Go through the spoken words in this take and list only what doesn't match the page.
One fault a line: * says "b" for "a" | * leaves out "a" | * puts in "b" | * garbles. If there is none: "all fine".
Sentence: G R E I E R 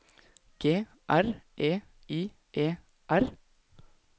all fine